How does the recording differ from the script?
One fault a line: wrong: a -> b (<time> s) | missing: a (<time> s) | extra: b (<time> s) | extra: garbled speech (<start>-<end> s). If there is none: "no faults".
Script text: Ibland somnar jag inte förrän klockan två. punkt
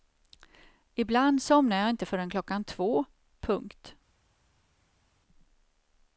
no faults